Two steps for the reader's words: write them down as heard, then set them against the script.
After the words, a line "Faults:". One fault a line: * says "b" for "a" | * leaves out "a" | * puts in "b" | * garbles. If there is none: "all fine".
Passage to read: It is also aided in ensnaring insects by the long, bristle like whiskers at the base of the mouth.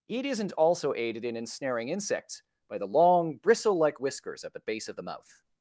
It isn't also aided in ensnaring insects by the long, bristle like whiskers at the base of the mouth.
Faults:
* says "isn't" for "is"